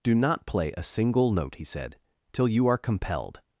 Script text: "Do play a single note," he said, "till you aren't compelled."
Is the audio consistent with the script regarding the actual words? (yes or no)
no